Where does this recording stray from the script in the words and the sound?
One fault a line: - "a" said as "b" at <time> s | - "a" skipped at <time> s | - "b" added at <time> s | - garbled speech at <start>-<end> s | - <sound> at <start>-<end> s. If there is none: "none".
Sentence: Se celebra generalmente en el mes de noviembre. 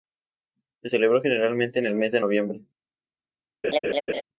- laugh at 3.6-4.2 s